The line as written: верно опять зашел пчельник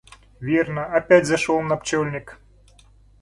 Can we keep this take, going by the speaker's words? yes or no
no